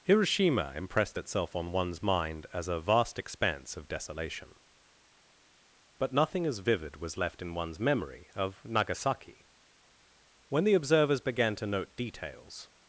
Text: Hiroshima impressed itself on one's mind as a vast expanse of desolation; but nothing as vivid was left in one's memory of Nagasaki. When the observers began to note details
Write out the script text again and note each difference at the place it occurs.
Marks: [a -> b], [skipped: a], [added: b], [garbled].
Hiroshima impressed itself on one's mind as a vast expanse of desolation; but nothing as vivid was left in one's memory of Nagasaki. When the observers began to note details